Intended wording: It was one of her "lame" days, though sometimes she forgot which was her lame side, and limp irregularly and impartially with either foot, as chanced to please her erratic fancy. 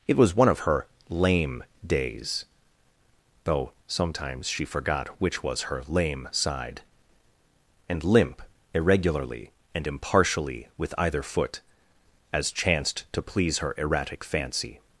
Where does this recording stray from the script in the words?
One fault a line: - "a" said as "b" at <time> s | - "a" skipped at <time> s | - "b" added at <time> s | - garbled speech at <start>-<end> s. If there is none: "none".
none